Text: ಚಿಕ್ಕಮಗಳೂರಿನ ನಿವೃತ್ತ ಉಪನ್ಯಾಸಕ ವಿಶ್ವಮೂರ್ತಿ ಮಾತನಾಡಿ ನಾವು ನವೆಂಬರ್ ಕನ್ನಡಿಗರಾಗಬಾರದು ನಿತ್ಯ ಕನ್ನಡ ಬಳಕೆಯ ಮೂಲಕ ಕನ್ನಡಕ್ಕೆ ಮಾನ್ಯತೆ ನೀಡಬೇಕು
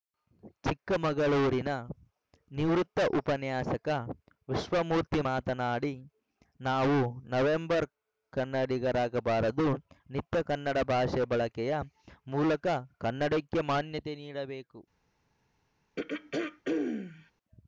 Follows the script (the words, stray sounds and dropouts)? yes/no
no